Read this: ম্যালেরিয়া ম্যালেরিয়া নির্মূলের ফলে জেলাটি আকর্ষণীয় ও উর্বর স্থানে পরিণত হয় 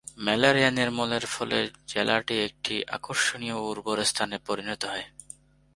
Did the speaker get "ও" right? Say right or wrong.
right